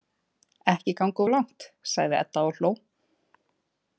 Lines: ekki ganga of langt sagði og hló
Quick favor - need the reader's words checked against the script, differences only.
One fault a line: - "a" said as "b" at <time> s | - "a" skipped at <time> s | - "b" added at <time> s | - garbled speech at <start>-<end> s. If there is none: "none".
- "edda" added at 2.2 s